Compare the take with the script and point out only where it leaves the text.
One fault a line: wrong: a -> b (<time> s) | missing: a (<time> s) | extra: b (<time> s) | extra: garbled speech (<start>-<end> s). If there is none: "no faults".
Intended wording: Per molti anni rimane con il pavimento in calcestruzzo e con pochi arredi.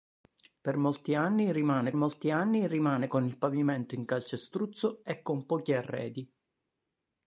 extra: molti anni rimane (1.9 s)